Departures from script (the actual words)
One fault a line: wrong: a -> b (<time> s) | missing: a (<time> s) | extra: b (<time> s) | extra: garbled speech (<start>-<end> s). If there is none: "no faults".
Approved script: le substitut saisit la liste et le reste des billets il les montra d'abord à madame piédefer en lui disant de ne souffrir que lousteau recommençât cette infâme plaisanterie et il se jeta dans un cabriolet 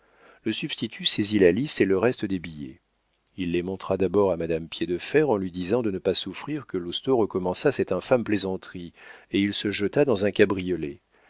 extra: pas (6.0 s)